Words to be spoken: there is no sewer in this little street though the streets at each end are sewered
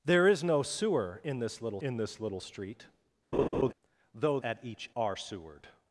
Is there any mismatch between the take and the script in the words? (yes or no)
yes